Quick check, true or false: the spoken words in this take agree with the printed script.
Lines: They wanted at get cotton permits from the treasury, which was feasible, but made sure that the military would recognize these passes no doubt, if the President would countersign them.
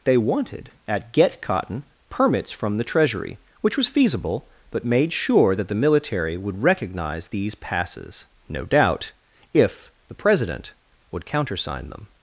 true